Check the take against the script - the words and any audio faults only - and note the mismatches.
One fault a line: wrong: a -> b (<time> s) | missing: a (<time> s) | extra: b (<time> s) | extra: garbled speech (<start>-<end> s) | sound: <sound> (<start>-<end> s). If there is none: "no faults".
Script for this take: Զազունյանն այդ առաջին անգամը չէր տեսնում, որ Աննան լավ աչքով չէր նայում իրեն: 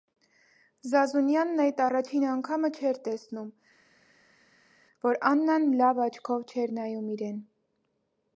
no faults